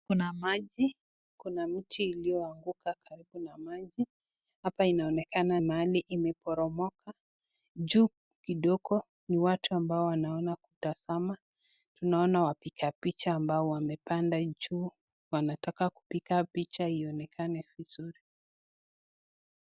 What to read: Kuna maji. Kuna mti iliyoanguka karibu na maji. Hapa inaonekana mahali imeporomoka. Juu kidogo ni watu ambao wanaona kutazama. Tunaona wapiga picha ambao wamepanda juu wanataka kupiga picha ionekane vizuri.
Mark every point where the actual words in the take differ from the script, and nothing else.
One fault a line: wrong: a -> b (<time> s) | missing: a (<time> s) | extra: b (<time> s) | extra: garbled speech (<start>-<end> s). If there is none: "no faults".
no faults